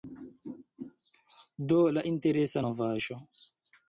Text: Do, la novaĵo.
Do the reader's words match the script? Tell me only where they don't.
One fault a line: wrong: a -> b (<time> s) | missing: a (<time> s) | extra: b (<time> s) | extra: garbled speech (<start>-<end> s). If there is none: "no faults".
extra: interesa (2.1 s)